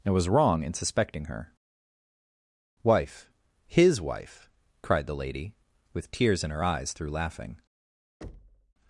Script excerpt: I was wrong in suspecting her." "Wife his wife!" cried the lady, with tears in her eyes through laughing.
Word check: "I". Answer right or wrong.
wrong